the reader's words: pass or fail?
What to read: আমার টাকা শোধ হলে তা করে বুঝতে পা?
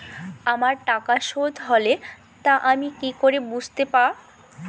fail